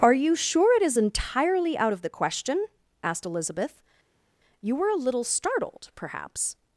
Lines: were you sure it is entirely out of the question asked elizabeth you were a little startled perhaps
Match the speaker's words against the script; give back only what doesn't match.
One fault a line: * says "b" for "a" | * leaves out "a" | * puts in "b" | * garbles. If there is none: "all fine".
* says "are" for "were"